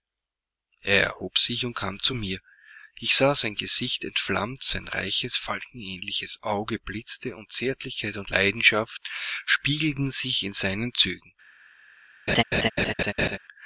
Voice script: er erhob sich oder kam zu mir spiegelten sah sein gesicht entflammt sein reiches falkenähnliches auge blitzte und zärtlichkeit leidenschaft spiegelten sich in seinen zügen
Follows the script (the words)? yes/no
no